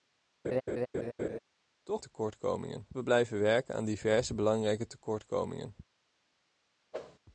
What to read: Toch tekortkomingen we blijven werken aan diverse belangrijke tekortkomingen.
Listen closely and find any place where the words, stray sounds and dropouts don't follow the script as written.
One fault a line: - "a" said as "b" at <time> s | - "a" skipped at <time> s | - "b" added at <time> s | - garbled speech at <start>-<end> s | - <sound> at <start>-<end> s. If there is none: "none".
- laugh at 0.4-1.4 s
- whoosh at 6.9-7.2 s